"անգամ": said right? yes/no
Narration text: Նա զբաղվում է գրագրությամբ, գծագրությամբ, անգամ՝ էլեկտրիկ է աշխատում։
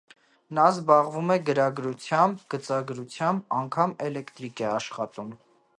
yes